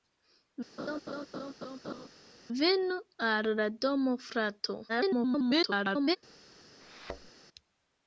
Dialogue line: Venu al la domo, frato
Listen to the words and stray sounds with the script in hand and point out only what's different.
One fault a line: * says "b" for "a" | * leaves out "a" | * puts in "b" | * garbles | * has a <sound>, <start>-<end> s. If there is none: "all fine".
* has a laugh, 0.8-2.1 s
* garbles
* has a thud, 6.8-7.3 s